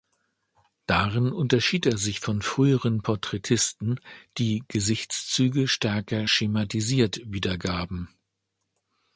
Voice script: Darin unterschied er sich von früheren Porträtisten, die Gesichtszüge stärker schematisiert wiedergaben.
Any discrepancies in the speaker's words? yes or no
no